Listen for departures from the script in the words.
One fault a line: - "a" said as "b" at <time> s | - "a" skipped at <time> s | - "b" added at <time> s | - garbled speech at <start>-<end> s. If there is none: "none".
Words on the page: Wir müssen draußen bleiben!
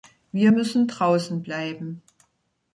none